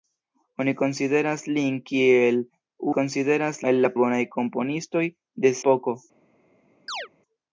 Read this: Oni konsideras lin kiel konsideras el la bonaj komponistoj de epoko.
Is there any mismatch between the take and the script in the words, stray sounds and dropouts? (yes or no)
yes